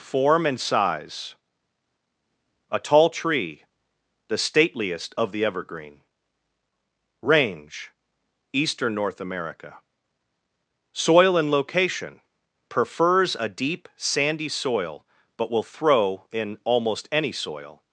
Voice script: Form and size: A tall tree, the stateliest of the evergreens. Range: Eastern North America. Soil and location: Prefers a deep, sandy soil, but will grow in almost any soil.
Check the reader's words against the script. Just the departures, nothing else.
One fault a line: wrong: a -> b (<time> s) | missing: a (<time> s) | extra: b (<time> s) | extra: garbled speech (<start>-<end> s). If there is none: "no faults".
wrong: evergreens -> evergreen (5.4 s)
wrong: grow -> throw (15.6 s)